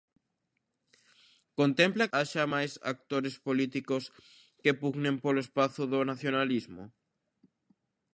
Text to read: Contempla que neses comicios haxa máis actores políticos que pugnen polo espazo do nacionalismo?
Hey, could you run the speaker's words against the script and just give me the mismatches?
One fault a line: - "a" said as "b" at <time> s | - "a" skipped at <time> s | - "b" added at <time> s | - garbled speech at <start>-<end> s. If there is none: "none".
- "que neses comicios" skipped at 2.1 s